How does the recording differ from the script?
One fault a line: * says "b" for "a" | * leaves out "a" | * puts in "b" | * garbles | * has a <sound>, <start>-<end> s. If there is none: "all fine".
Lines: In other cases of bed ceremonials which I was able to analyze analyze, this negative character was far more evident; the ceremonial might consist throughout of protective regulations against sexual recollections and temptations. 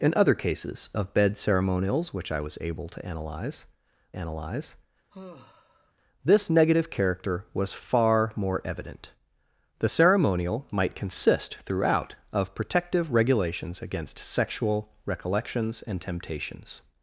* has a sigh, 5.1-5.9 s